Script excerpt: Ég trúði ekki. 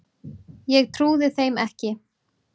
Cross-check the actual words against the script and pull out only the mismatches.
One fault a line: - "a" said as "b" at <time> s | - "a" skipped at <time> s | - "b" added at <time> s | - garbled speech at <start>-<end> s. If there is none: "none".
- "þeim" added at 1.4 s